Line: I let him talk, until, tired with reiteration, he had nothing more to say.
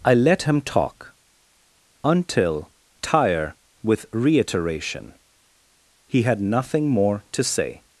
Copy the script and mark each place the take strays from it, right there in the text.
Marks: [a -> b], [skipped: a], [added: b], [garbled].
I let him talk, until, [tired -> tire] with reiteration, he had nothing more to say.